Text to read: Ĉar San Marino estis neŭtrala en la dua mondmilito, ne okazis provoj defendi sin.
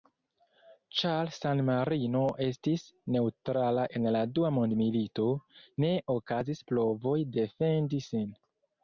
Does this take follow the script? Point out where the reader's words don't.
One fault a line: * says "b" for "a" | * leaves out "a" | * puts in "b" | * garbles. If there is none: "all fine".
all fine